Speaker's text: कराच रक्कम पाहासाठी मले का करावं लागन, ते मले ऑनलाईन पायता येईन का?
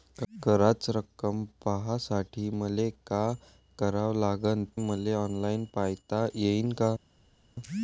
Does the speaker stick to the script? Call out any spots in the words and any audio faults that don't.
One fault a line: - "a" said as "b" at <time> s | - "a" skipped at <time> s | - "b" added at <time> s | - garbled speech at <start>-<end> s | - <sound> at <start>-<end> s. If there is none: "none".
- "ते" skipped at 4.6 s